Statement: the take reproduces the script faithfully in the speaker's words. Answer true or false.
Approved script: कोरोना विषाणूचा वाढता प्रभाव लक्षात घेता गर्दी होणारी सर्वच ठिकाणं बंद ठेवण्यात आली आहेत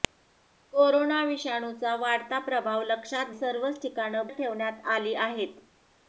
false